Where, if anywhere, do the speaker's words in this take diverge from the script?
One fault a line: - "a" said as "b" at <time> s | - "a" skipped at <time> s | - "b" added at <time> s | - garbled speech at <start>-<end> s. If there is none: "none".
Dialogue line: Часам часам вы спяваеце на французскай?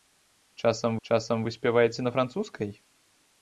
none